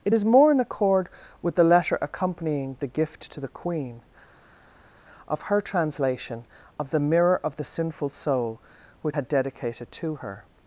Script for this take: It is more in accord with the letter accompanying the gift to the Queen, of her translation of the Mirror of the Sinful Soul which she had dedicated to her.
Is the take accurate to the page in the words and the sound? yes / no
no